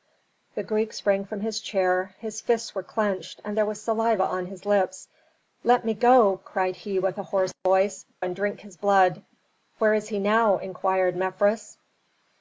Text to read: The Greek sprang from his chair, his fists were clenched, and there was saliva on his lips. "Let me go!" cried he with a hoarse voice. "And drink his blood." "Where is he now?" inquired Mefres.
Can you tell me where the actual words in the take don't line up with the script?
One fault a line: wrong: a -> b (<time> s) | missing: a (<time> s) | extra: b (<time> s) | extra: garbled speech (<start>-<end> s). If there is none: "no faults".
no faults